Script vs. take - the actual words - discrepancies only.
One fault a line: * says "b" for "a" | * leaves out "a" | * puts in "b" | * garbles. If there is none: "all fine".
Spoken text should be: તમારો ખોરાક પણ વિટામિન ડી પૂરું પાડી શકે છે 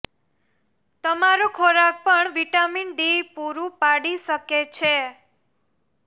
all fine